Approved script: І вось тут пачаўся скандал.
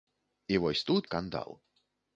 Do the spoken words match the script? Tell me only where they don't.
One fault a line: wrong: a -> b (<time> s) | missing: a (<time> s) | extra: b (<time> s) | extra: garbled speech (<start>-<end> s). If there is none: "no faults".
missing: пачаўся (1.1 s)